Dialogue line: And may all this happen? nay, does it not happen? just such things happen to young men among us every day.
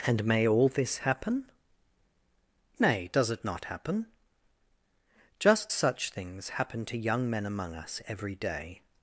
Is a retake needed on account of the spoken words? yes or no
no